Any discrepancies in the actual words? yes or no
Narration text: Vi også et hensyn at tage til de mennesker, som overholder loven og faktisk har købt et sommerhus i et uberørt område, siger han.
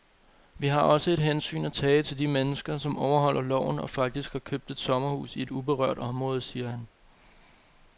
yes